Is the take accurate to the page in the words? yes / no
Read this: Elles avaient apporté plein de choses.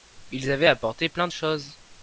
no